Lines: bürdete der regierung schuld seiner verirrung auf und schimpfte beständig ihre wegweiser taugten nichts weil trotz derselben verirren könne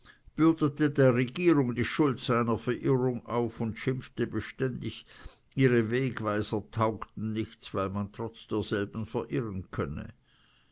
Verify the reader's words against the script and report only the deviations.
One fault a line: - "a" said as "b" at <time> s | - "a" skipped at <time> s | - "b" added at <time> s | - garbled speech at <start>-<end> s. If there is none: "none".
- "die" added at 1.7 s
- "man" added at 7.9 s